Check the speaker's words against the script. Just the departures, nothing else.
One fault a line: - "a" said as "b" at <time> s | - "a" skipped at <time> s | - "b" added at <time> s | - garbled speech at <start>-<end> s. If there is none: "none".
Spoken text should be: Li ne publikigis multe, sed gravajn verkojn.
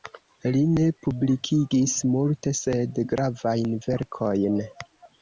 none